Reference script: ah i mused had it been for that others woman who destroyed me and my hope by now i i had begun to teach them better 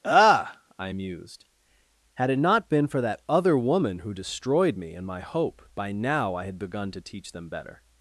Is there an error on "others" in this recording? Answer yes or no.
yes